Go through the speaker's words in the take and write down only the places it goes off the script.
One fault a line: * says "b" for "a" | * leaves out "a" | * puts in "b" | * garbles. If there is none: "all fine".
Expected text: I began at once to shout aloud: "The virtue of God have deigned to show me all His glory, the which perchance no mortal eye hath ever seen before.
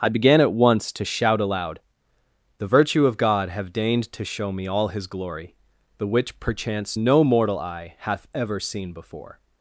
all fine